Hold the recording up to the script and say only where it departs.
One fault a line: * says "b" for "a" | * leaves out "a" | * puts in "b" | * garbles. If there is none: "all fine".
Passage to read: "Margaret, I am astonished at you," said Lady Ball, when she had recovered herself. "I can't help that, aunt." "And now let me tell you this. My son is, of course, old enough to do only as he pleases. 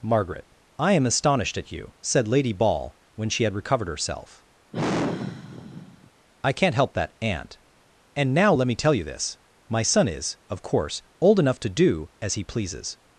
* leaves out "only"